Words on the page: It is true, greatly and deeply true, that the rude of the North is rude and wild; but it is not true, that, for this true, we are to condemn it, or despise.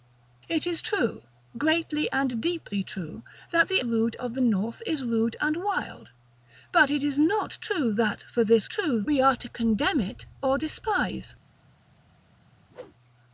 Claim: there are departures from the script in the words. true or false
false